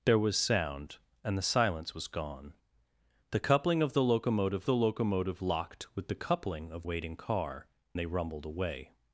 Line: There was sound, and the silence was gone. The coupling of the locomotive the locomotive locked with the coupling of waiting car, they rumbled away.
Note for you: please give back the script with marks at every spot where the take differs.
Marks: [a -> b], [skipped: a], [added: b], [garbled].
There was sound, and the silence was gone. The coupling of the locomotive the locomotive locked with the coupling of waiting car, they rumbled away.